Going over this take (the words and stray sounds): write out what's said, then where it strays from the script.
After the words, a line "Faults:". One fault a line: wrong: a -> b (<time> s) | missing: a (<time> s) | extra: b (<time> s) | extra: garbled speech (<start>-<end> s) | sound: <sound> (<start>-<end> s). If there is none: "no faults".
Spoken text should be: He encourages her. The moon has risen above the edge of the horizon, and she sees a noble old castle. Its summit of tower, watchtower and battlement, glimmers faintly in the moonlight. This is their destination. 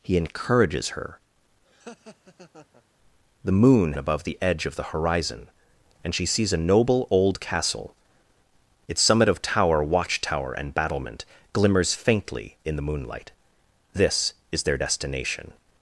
He encourages her. The moon above the edge of the horizon, and she sees a noble old castle. Its summit of tower, watchtower and battlement, glimmers faintly in the moonlight. This is their destination.
Faults:
sound: laugh (1.7-2.8 s)
missing: has risen (3.9 s)